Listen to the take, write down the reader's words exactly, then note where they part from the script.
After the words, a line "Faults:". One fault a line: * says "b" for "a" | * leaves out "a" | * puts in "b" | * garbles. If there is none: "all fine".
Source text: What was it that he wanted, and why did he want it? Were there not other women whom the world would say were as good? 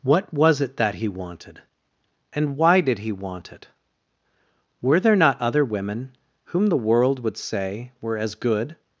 What was it that he wanted, and why did he want it? Were there not other women whom the world would say were as good?
Faults:
all fine